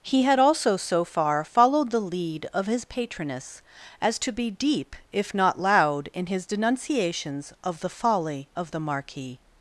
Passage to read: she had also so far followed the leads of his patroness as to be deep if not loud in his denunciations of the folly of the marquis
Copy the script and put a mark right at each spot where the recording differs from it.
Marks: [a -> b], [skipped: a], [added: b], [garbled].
[she -> he] had also so far followed the [leads -> lead] of his patroness as to be deep if not loud in his denunciations of the folly of the marquis